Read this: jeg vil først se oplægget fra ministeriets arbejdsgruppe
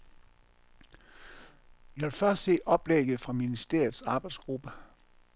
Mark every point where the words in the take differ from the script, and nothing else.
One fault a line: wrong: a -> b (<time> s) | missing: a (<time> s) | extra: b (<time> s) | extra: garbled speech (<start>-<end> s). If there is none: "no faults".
no faults